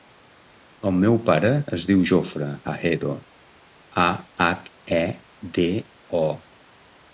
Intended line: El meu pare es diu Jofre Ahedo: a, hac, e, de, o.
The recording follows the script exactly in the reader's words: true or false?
true